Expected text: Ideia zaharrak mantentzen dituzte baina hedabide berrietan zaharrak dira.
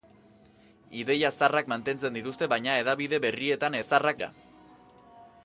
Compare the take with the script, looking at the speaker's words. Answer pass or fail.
pass